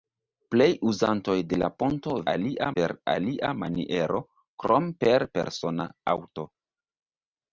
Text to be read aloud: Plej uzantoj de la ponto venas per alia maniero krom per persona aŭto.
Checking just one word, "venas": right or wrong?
wrong